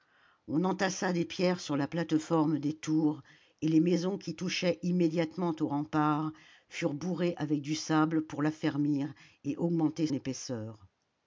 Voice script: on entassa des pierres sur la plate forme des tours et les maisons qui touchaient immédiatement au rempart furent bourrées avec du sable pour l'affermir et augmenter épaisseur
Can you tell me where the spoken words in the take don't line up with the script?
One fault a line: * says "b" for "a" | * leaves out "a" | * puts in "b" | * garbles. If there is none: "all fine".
all fine